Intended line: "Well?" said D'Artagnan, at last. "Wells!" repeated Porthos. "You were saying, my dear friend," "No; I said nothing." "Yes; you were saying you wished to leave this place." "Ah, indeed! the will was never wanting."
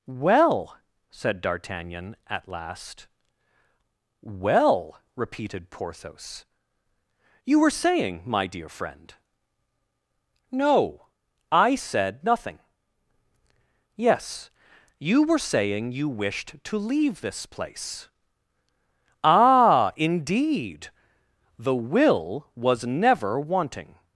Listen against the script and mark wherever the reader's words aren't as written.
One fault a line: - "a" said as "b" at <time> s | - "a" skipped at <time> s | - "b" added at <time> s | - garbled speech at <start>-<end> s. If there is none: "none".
- "Wells" said as "Well" at 4.2 s